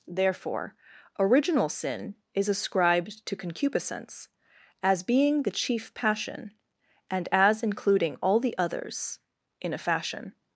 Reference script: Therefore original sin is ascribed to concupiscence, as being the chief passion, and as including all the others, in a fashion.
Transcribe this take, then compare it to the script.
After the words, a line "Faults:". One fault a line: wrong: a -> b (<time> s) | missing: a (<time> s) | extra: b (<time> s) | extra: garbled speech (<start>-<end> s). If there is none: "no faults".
Therefore original sin is ascribed to concupiscence, as being the chief passion, and as including all the others, in a fashion.
Faults:
no faults